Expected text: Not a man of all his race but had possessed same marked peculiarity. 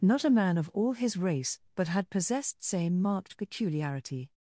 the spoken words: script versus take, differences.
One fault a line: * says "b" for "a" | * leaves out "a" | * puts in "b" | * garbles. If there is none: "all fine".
all fine